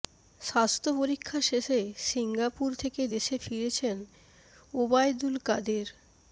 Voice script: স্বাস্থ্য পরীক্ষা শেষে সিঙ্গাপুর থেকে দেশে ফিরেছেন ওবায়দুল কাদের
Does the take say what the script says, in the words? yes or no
yes